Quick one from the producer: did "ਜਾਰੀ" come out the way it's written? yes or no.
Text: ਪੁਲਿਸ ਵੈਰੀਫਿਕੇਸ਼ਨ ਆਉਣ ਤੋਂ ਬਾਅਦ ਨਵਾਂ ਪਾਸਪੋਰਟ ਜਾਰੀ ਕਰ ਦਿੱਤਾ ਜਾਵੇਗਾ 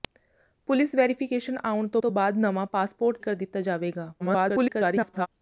no